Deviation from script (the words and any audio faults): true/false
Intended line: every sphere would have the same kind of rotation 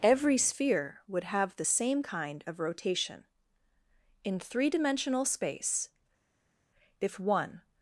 true